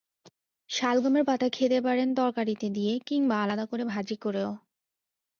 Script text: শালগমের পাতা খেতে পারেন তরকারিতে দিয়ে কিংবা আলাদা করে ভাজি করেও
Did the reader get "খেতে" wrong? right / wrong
right